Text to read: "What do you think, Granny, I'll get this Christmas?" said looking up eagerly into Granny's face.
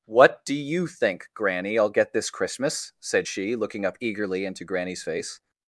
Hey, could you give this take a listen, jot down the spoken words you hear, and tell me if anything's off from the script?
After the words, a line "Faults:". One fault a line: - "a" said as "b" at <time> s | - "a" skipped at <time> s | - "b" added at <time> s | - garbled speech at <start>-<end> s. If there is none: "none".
"What do you think, Granny, I'll get this Christmas?" said she, looking up eagerly into Granny's face.
Faults:
- "she" added at 3.3 s